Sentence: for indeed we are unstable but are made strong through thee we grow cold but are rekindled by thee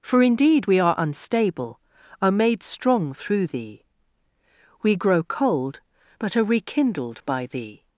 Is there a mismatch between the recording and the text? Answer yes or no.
yes